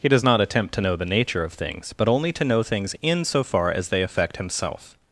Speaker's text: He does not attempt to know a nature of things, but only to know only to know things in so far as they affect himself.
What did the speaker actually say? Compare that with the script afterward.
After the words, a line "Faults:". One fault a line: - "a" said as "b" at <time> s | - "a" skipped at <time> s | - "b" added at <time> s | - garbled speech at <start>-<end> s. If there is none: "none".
He does not attempt to know the nature of things, but only to know things in so far as they affect himself.
Faults:
- "a" said as "the" at 1.0 s
- "only to know" skipped at 2.6 s